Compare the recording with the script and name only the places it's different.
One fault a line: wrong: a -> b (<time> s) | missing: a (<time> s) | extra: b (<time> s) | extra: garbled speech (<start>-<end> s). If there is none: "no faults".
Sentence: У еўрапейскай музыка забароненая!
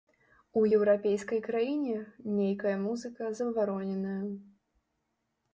extra: краіне нейкая (1.5 s)